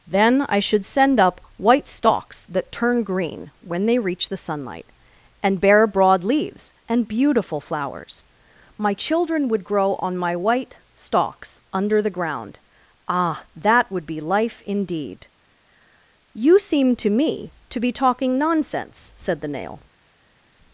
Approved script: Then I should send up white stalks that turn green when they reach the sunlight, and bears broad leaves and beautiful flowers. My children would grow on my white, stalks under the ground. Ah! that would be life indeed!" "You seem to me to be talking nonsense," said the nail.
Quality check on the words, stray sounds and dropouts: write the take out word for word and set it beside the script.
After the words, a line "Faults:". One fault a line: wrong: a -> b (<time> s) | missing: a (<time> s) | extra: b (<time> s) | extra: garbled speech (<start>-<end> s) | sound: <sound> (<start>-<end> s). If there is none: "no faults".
Then I should send up white stalks that turn green when they reach the sunlight, and bear broad leaves and beautiful flowers. My children would grow on my white, stalks under the ground. Ah! that would be life indeed!" "You seem to me to be talking nonsense," said the nail.
Faults:
wrong: bears -> bear (5.6 s)